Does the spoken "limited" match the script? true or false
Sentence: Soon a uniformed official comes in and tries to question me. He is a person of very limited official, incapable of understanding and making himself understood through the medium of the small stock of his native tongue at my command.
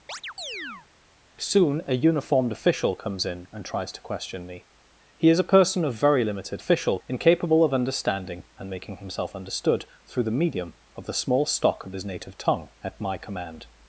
true